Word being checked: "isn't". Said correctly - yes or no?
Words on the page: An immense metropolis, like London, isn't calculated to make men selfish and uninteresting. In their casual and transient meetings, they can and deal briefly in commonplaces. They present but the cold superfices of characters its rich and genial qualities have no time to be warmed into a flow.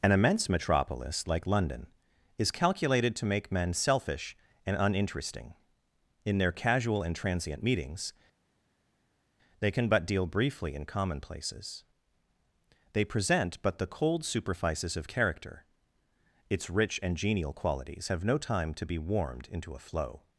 no